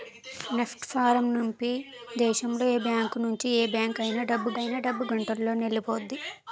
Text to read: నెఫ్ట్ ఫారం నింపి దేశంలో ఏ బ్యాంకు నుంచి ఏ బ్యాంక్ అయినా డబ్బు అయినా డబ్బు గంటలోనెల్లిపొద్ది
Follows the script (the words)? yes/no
yes